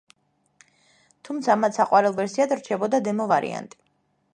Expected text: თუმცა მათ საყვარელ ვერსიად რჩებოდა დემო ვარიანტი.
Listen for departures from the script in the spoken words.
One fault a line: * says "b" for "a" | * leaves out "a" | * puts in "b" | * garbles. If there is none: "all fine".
all fine